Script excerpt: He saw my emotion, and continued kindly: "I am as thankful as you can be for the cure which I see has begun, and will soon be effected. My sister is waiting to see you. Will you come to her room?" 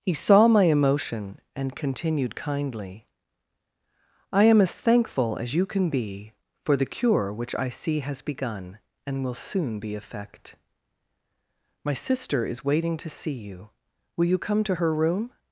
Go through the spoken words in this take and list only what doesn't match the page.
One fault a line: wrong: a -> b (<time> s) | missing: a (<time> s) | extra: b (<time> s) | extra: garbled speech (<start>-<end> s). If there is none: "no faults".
wrong: effected -> effect (9.9 s)